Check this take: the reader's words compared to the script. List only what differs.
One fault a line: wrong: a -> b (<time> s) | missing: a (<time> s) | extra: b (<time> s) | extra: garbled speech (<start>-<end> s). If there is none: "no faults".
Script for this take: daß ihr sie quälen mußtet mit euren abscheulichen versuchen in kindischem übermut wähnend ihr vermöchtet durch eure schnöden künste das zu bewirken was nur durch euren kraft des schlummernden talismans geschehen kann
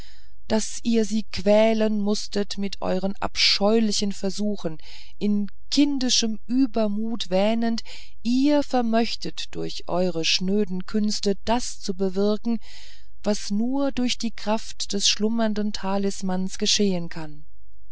wrong: euren -> die (14.2 s)